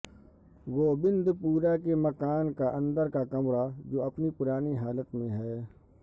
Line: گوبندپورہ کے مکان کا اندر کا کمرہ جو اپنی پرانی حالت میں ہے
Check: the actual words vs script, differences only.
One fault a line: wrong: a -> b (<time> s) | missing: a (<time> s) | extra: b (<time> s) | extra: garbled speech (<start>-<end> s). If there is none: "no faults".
no faults